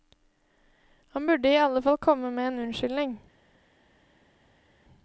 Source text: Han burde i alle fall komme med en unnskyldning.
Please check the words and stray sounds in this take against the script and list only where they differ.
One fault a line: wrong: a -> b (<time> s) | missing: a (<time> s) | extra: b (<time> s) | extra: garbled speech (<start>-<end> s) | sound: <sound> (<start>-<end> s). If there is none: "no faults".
no faults